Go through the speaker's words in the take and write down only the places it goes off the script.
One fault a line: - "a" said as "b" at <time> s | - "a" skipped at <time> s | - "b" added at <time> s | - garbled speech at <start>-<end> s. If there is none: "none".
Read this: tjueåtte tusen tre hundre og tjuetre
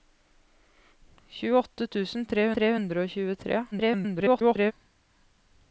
- "tre" added at 2.6 s
- garbled speech at 3.7-4.7 s